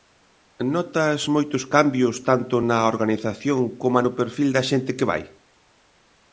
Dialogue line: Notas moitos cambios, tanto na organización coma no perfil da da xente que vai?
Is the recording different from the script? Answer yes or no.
yes